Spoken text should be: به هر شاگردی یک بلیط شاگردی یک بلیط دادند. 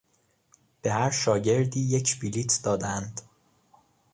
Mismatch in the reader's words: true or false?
true